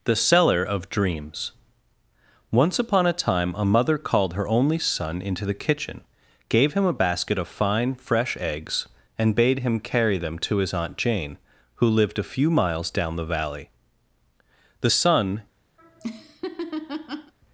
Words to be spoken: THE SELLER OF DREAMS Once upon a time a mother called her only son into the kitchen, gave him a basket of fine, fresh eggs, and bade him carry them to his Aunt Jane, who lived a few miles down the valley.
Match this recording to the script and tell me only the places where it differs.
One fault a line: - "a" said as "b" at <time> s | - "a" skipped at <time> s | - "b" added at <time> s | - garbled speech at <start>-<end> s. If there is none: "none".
- "The son" added at 14.8 s